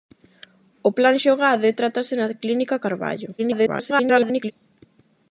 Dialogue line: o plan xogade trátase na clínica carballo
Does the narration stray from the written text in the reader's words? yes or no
yes